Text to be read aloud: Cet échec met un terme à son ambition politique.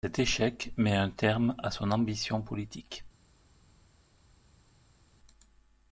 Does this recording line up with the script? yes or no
yes